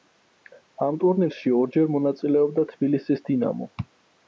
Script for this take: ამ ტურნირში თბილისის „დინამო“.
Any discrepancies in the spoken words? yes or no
yes